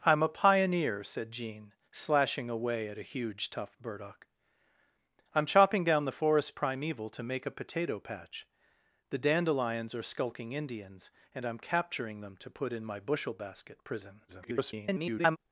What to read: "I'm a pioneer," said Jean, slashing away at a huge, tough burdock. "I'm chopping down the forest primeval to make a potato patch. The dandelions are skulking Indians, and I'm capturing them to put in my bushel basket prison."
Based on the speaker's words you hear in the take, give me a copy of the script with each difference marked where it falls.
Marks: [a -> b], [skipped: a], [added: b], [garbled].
"I'm a pioneer," said Jean, slashing away at a huge, tough burdock. "I'm chopping down the forest primeval to make a potato patch. The dandelions are skulking Indians, and I'm capturing them to put in my bushel basket prison." [garbled]